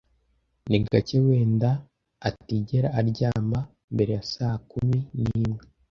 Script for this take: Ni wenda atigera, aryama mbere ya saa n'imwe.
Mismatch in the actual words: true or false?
true